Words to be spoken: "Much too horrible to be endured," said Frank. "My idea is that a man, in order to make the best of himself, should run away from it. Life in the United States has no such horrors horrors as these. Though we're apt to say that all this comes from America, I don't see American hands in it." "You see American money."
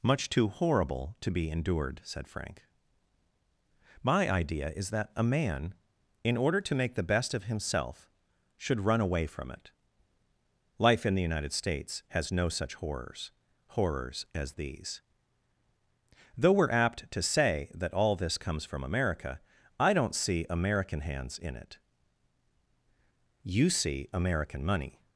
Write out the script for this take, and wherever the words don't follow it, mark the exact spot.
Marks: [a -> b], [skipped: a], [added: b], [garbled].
"Much too horrible to be endured," said Frank. "My idea is that a man, in order to make the best of himself, should run away from it. Life in the United States has no such horrors horrors as these. Though we're apt to say that all this comes from America, I don't see American hands in it." "You see American money."